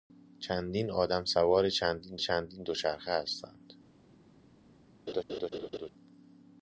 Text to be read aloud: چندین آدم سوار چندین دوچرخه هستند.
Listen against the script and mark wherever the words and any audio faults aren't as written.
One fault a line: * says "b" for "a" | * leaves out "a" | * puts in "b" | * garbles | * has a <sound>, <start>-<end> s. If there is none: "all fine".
* puts in "چندین"
* has a laugh, 5.1-5.9 s